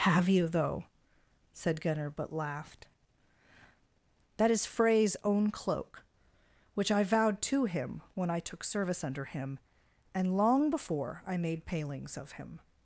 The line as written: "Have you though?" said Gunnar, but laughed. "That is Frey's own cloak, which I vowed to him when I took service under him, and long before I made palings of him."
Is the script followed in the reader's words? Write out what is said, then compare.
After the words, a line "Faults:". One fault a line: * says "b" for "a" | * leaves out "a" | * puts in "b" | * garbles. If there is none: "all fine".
"Have you though?" said Gunnar, but laughed. "That is Frey's own cloak, which I vowed to him when I took service under him, and long before I made palings of him."
Faults:
all fine